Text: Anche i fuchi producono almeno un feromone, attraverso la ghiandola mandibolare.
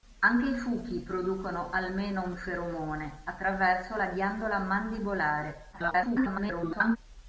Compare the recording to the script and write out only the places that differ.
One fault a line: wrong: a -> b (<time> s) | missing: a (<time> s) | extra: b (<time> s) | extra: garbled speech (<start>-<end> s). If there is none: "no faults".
extra: garbled speech (5.7-7.0 s)